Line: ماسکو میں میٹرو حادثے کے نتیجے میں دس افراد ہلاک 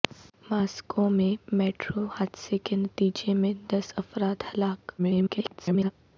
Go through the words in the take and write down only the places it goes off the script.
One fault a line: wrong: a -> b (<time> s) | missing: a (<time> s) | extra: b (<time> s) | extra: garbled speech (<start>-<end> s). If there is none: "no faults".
extra: garbled speech (5.0-5.9 s)